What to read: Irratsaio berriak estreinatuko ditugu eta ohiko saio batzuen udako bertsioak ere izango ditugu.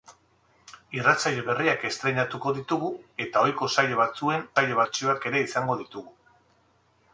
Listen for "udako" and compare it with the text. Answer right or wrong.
wrong